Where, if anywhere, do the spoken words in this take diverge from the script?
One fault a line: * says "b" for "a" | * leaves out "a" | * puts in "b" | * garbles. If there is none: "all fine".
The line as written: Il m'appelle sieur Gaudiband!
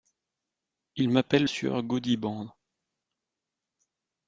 all fine